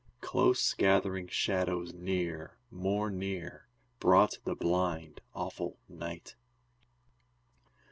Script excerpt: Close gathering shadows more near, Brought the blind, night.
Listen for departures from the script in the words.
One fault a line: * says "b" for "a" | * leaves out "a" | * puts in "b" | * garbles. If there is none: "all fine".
* puts in "near"
* puts in "awful"